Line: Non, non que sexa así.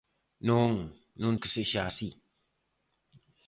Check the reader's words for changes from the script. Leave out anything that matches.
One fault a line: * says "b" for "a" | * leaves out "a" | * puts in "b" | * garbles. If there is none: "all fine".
all fine